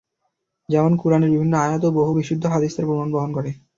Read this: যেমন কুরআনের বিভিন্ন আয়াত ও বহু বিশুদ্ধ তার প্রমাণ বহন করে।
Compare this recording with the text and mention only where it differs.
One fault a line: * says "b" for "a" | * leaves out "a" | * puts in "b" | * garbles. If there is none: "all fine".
* puts in "হাদীস"